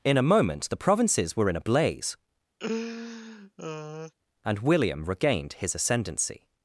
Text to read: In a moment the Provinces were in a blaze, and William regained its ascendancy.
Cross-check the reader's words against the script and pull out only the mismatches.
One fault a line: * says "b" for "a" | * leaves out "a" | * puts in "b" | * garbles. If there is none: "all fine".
* says "his" for "its"